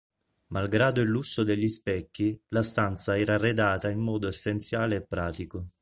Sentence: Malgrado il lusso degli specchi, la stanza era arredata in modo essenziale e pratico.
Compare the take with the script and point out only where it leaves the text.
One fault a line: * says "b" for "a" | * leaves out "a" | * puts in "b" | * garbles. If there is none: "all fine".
all fine